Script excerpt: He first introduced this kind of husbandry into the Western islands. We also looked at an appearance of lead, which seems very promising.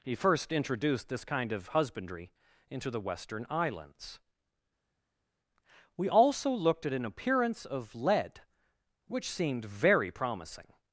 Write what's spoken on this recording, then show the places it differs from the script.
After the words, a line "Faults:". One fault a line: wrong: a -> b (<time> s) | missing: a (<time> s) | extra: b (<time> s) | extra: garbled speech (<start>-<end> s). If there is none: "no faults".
He first introduced this kind of husbandry into the Western islands. We also looked at an appearance of lead, which seemed very promising.
Faults:
wrong: seems -> seemed (9.3 s)